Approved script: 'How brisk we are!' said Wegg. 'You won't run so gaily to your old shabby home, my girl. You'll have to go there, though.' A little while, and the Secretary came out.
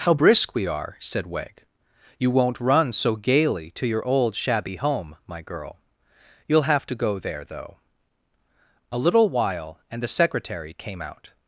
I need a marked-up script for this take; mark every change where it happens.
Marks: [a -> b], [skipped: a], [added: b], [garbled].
'How brisk we are!' said Wegg. 'You won't run so gaily to your old shabby home, my girl. You'll have to go there, though.' A little while, and the Secretary came out.